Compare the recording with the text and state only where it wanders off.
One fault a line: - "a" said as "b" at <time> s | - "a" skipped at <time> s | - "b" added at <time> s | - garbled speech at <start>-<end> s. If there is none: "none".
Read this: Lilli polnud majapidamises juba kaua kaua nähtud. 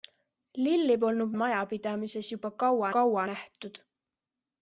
none